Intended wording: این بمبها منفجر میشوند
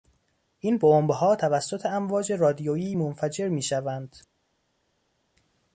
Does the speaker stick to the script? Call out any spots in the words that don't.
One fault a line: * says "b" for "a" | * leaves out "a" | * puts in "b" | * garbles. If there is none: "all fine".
* puts in "توسط امواج رادیویی"